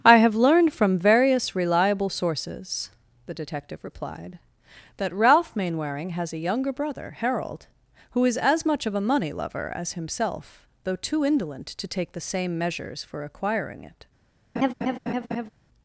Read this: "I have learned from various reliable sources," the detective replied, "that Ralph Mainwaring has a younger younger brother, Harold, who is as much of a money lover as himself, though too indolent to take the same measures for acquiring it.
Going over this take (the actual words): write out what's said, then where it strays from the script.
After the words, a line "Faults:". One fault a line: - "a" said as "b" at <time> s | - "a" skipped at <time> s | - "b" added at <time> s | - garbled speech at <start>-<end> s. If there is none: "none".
"I have learned from various reliable sources," the detective replied, "that Ralph Mainwaring has a younger brother, Harold, who is as much of a money lover as himself, though too indolent to take the same measures for acquiring it.
Faults:
- "younger" skipped at 6.7 s